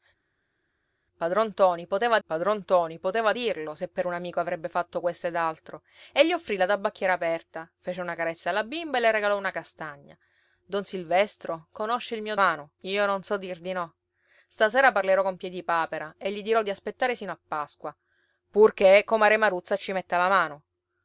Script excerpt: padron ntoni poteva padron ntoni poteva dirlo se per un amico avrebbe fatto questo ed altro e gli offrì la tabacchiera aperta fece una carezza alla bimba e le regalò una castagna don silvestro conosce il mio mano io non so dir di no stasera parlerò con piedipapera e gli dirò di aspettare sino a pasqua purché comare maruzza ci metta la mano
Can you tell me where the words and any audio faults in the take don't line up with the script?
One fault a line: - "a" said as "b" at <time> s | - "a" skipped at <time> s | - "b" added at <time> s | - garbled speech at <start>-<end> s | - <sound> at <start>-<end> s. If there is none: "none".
none